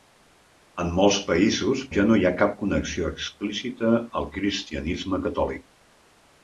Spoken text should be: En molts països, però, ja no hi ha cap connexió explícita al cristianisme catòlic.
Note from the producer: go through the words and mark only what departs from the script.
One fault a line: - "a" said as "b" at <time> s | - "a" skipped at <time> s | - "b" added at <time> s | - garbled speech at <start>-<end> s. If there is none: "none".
- "però" skipped at 1.8 s